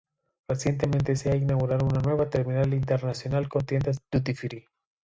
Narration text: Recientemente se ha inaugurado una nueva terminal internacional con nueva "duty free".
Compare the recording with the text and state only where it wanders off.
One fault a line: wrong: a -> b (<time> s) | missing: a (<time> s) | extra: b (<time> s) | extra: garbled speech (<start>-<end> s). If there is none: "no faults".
wrong: nueva -> tiendas (3.7 s)